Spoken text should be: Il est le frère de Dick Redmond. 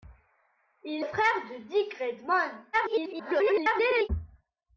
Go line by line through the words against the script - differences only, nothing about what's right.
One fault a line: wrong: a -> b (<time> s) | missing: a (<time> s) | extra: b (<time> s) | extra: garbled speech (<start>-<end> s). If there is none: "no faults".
missing: est (1.1 s)
extra: garbled speech (2.7-4.1 s)